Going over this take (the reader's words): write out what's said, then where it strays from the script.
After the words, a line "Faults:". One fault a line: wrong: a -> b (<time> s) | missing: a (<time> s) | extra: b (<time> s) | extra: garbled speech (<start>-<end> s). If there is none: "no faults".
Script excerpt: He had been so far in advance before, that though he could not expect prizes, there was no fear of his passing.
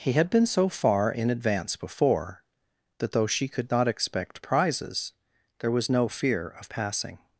He had been so far in advance before, that though she could not expect prizes, there was no fear of passing.
Faults:
wrong: he -> she (3.3 s)
missing: his (6.7 s)